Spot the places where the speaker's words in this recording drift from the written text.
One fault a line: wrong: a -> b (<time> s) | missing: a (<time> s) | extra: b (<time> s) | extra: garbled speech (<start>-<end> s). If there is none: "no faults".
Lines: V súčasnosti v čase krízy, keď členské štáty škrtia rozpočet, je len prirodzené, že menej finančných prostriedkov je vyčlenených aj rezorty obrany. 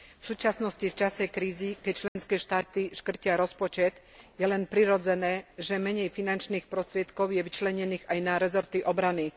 extra: na (8.2 s)